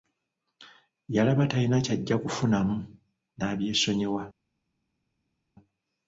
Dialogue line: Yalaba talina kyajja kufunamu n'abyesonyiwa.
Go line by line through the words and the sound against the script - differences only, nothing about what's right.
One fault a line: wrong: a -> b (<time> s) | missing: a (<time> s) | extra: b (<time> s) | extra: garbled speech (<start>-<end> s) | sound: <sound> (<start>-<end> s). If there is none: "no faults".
no faults